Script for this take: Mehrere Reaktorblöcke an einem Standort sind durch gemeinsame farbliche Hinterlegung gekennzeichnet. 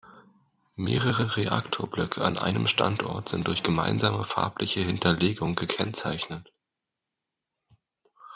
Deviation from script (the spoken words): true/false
false